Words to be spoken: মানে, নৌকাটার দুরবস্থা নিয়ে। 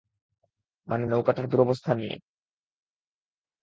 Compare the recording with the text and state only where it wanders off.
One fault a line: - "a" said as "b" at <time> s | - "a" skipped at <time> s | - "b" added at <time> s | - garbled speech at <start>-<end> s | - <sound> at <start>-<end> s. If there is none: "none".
none